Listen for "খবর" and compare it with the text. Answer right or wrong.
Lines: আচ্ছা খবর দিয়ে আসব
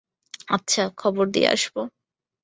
right